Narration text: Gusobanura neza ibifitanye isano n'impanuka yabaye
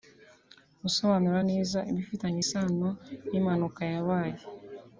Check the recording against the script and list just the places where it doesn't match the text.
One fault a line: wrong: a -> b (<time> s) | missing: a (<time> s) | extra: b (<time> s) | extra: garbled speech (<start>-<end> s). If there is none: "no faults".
no faults